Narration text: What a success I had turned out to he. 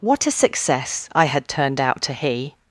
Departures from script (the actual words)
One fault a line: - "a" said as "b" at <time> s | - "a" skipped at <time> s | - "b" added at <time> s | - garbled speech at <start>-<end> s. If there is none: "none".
none